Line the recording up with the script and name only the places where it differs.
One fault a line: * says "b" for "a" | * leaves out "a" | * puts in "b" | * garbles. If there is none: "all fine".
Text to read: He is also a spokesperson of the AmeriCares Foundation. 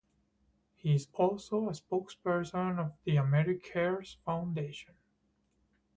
all fine